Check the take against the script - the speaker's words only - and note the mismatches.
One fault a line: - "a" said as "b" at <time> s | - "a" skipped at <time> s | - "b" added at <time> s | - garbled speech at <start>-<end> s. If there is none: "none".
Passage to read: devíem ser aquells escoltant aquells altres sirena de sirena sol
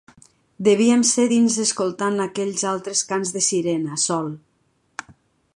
- "aquells" said as "dins" at 1.3 s
- "sirena" said as "cants" at 3.1 s